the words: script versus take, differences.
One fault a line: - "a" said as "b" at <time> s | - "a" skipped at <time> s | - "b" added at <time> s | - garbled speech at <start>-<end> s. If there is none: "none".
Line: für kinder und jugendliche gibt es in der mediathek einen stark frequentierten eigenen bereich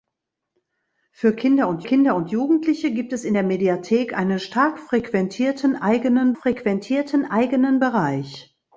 - "kinder und" added at 1.8 s
- "frequentierten eigenen" added at 6.3 s